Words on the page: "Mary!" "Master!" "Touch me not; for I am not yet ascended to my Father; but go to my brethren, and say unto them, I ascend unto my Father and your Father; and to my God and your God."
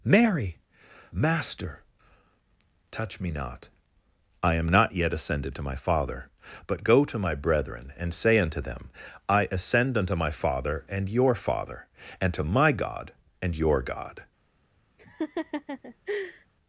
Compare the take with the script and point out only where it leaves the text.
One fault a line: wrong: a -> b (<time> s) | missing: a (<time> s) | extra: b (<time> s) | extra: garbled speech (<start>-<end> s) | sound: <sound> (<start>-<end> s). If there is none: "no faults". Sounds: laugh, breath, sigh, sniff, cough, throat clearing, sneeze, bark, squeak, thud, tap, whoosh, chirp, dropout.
missing: for (3.7 s)
sound: laugh (15.0-16.5 s)